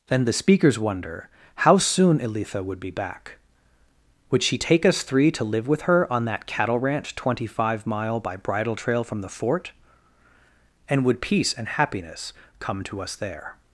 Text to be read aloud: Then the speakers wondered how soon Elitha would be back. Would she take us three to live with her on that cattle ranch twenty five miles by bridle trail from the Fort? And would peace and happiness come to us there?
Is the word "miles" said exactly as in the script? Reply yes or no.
no